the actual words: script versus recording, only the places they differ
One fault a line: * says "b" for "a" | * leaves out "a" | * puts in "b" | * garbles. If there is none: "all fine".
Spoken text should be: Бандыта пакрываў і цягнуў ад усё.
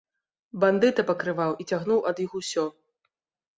* puts in "іх"